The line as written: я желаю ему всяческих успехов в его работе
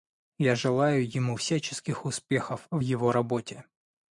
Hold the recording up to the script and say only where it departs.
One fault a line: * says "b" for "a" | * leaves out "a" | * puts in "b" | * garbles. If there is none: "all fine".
all fine